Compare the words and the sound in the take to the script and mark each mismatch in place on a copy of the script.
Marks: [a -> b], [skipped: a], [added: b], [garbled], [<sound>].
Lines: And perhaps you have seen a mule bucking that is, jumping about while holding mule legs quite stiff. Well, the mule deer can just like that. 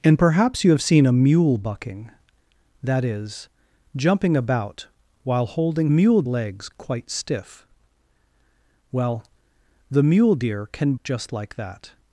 And perhaps you have seen a mule bucking that is, jumping about while holding mule legs quite stiff. Well, the mule deer can just like that.